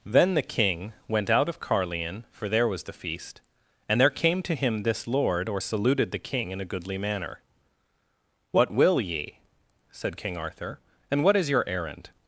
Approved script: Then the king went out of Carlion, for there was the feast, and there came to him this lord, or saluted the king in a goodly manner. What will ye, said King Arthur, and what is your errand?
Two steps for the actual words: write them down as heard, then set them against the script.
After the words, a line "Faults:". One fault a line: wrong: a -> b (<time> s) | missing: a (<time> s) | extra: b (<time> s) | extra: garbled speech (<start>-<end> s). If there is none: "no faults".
Then the king went out of Carlion, for there was the feast, and there came to him this lord, or saluted the king in a goodly manner. What will ye, said King Arthur, and what is your errand?
Faults:
no faults